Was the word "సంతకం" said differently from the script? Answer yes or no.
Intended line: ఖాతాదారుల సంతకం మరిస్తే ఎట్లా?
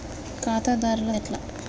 yes